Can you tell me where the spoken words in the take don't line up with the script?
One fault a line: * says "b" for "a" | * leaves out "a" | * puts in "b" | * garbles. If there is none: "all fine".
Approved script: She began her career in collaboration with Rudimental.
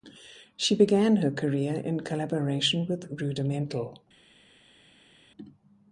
all fine